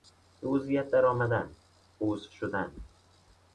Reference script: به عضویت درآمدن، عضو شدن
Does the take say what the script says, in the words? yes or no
yes